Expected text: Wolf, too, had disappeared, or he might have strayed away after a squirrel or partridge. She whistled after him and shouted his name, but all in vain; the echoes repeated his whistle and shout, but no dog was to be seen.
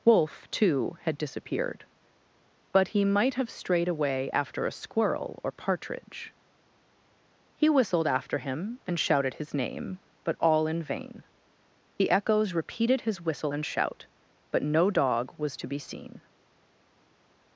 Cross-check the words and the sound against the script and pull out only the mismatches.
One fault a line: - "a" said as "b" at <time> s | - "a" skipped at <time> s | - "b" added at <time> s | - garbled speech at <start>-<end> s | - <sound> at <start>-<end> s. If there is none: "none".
- "or" said as "but" at 2.7 s
- "She" said as "He" at 7.5 s